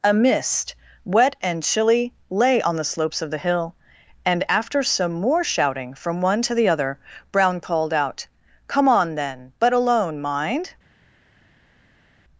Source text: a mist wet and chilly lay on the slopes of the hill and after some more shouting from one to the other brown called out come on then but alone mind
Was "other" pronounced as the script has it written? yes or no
yes